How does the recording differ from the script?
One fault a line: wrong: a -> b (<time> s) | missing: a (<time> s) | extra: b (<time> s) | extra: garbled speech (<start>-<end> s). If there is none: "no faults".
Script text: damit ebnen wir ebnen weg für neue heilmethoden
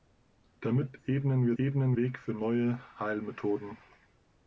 no faults